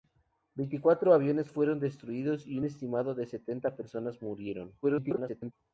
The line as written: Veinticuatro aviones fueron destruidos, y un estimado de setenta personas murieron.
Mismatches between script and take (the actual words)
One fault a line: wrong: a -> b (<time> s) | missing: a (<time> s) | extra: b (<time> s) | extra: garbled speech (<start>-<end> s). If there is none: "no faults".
extra: garbled speech (4.8-5.5 s)